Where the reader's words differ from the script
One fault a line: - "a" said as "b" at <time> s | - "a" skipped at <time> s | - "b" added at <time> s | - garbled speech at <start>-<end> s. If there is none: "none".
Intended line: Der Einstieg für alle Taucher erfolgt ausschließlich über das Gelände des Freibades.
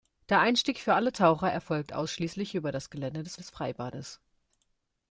- "des" added at 3.4 s